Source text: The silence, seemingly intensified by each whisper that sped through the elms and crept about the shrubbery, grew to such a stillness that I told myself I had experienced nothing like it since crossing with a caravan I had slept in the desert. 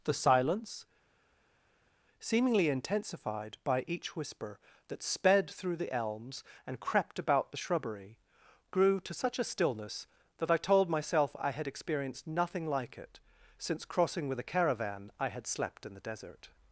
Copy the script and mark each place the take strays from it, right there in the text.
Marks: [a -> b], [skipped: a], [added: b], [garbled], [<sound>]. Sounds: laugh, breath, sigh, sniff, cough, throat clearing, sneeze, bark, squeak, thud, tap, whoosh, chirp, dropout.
The silence, seemingly intensified by each whisper that sped through the elms and crept about the shrubbery, grew to such a stillness that I told myself I had experienced nothing like it since crossing with a caravan I had slept in the desert.